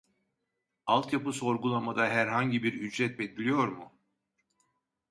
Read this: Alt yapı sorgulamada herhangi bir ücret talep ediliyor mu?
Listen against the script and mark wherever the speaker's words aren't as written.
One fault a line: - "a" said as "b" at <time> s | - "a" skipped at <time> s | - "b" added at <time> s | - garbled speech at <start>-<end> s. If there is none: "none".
- "talep" skipped at 3.2 s